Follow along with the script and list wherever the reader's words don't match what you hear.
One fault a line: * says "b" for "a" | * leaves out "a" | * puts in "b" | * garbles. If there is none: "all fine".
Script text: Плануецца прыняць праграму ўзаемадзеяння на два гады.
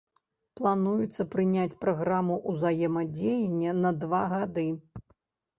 all fine